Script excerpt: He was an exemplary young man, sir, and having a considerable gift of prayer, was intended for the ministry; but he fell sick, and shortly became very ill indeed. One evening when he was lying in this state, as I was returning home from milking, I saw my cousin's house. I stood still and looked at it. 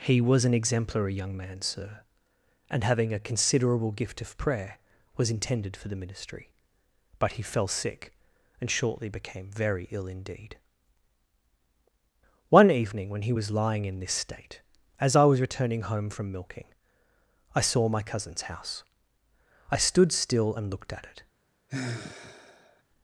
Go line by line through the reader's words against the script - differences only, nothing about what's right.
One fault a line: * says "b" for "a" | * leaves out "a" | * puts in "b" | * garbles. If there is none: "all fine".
all fine